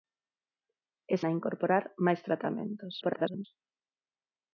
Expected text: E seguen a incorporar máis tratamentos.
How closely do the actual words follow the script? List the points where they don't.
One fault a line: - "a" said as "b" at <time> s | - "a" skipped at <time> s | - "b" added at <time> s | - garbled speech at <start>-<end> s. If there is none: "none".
- "seguen" skipped at 1.1 s
- garbled speech at 3.0-3.5 s